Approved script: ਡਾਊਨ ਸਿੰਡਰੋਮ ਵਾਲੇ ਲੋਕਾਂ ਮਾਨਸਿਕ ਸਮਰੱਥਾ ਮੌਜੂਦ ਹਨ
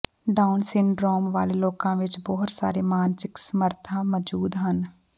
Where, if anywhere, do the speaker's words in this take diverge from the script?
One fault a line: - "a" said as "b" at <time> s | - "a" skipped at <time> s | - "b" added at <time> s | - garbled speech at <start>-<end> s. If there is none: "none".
- "ਵਿੱਚ ਬਹੁਤ ਸਾਰੇ" added at 1.9 s